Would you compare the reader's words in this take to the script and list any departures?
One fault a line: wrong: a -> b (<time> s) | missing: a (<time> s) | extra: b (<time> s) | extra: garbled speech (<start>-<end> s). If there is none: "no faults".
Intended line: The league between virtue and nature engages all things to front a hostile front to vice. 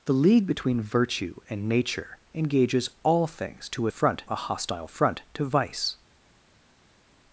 no faults